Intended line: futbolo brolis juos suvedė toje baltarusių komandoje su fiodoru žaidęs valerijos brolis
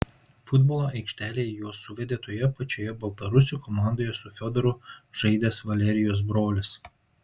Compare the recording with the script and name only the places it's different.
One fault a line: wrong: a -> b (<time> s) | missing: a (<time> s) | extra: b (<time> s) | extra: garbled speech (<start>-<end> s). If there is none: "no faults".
wrong: brolis -> aikštelėje (1.0 s)
extra: pačioje (2.6 s)